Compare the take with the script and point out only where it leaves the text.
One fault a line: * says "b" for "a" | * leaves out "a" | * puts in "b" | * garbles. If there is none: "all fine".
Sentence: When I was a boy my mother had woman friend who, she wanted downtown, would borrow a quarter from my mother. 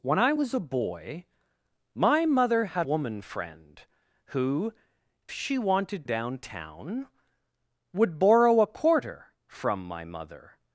all fine